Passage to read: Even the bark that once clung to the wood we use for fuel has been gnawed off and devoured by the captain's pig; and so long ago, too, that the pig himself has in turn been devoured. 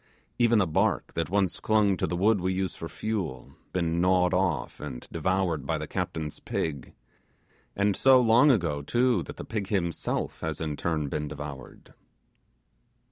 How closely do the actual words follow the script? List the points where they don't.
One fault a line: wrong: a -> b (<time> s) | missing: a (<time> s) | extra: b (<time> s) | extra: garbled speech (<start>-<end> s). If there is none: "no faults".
missing: has (3.5 s)